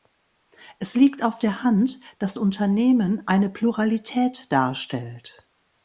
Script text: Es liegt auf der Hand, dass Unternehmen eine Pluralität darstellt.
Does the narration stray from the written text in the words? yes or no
no